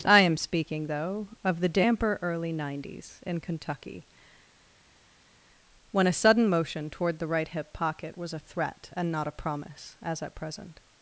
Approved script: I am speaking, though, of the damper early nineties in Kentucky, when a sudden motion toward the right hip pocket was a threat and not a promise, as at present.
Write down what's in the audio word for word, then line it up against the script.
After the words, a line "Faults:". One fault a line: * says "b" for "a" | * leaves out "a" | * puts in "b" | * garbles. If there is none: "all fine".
I am speaking, though, of the damper early nineties in Kentucky, when a sudden motion toward the right hip pocket was a threat and not a promise, as at present.
Faults:
all fine